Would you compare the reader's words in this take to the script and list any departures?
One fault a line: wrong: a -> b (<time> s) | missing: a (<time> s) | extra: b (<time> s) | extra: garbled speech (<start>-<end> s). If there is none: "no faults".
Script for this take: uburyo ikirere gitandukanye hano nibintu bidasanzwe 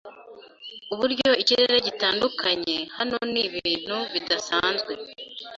no faults